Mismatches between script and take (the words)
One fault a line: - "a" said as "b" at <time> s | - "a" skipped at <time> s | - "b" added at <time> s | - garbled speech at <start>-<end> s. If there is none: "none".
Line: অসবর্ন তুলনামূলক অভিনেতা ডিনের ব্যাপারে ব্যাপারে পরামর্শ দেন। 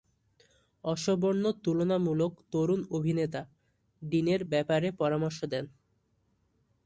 - "তরুণ" added at 2.5 s
- "ব্যাপারে" skipped at 4.9 s